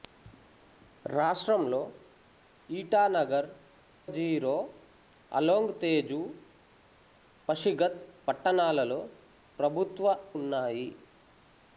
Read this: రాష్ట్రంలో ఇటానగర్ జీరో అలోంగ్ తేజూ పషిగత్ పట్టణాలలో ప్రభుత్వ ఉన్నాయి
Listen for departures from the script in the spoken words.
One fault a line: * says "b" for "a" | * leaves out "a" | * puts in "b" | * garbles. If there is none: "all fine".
all fine